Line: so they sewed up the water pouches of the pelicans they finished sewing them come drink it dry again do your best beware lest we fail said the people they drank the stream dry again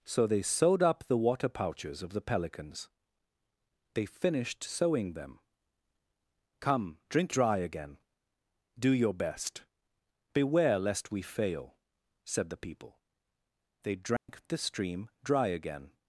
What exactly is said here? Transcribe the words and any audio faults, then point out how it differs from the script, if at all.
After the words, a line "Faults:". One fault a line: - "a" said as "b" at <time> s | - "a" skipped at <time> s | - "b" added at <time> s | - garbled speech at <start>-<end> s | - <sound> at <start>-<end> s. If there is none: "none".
so they sewed up the water pouches of the pelicans they finished sewing them come drink dry again do your best beware lest we fail said the people they drank the stream dry again
Faults:
- "it" skipped at 7.3 s
- dropout at 14.2-14.3 s